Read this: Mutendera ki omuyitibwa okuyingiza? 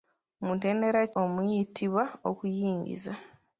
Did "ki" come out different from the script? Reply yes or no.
yes